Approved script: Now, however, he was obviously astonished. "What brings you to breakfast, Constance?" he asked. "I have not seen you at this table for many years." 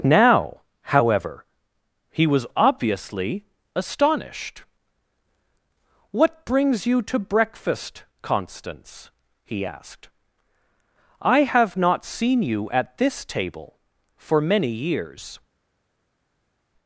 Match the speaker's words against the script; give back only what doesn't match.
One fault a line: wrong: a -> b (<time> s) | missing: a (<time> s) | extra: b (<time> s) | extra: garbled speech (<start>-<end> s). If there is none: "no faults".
no faults